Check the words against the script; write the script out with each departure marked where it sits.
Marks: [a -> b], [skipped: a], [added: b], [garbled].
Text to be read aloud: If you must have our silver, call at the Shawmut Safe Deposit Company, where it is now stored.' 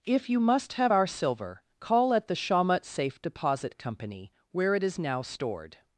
If you must have our silver, call at the Shawmut Safe Deposit Company, where it is now stored.'